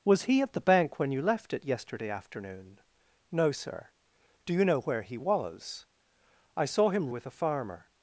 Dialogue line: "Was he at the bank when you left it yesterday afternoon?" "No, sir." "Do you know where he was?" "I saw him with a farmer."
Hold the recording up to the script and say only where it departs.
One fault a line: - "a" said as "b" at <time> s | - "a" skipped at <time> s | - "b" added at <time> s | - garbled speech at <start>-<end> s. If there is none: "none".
none